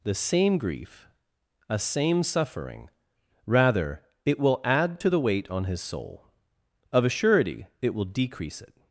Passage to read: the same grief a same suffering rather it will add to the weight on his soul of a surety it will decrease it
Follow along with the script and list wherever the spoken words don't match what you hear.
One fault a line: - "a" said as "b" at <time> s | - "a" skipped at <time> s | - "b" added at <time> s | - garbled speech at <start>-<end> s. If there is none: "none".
none